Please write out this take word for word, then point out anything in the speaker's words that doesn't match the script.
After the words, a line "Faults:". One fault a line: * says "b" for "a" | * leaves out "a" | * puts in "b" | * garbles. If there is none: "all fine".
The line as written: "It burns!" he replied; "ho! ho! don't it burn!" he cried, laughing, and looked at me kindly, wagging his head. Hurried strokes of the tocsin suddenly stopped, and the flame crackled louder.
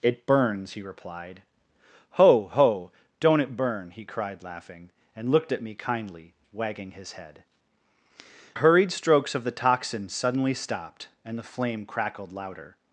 "It burns!" he replied; "ho! ho! don't it burn!" he cried, laughing, and looked at me kindly, wagging his head. Hurried strokes of the tocsin suddenly stopped, and the flame crackled louder.
Faults:
all fine